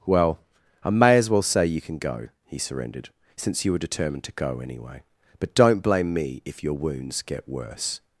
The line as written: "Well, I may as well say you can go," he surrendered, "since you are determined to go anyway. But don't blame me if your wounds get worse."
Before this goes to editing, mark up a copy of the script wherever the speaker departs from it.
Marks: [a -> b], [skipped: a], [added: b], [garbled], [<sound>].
"Well, I may as well say you can go," he surrendered, "since you [are -> were] determined to go anyway. But don't blame me if your wounds get worse."